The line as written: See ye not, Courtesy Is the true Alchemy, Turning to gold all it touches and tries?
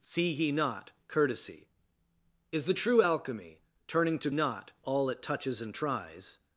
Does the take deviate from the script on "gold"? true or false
true